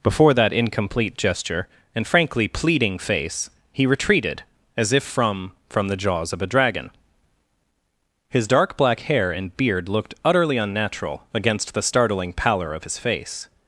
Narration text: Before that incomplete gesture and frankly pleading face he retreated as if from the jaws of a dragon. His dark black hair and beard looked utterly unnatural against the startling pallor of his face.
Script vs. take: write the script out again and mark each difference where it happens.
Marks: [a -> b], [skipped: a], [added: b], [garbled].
Before that incomplete gesture and frankly pleading face he retreated as if from [added: from] the jaws of a dragon. His dark black hair and beard looked utterly unnatural against the startling pallor of his face.